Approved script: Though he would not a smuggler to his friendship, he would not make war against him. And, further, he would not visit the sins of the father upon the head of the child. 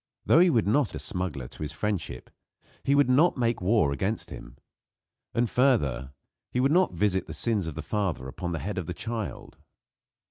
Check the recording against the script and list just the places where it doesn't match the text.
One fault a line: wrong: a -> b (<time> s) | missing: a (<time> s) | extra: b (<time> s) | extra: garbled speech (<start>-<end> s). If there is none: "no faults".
no faults